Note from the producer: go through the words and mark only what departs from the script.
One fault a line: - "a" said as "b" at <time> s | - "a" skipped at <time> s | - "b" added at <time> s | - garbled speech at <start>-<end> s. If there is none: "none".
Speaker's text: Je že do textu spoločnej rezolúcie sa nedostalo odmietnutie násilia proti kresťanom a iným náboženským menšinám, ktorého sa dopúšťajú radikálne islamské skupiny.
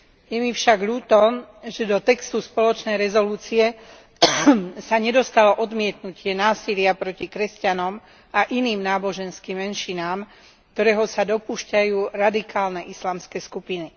- "mi však ľúto" added at 0.4 s